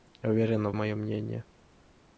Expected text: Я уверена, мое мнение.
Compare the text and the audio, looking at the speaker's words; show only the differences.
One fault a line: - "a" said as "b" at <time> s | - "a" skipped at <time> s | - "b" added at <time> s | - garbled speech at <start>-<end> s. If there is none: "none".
none